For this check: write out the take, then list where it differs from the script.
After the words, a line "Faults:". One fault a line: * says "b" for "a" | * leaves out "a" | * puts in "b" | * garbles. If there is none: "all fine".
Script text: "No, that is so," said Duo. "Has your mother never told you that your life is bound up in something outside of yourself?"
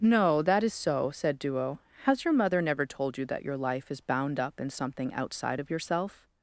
"No, that is so," said Duo. "Has your mother never told you that your life is bound up in something outside of yourself?"
Faults:
all fine